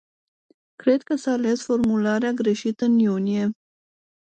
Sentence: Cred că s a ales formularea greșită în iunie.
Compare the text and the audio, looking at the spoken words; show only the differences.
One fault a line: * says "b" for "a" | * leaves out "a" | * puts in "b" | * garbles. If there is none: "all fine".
all fine